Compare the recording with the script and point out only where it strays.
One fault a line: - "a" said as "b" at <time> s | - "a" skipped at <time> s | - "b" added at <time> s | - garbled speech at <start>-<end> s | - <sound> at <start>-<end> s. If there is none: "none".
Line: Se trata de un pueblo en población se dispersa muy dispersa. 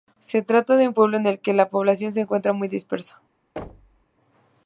- "el que la" added at 1.3 s
- "dispersa" said as "encuentra" at 2.2 s
- thud at 3.6-4.1 s